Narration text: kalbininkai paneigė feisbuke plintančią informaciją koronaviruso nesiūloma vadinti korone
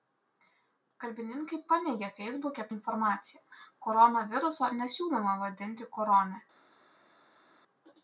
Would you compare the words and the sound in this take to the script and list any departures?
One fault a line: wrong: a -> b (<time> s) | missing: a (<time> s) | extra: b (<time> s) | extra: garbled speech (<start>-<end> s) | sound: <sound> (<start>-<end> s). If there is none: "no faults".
missing: plintančią (2.6 s)